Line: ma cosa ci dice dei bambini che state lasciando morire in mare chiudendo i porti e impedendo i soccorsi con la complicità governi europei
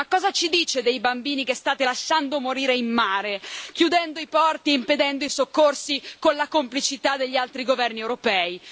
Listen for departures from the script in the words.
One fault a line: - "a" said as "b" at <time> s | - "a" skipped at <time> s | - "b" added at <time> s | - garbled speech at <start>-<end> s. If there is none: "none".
- "degli altri" added at 7.2 s